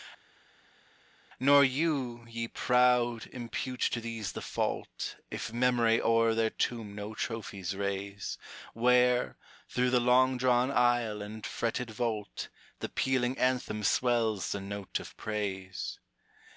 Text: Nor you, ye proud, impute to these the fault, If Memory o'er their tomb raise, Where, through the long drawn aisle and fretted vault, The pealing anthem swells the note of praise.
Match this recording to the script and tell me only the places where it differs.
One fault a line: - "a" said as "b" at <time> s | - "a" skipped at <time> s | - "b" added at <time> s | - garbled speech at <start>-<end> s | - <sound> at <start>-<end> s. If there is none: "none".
- "no trophies" added at 6.9 s